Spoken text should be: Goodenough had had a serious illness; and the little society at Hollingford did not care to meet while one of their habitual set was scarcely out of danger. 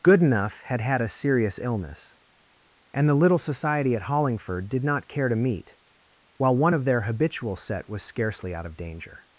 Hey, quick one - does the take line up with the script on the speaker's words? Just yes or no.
yes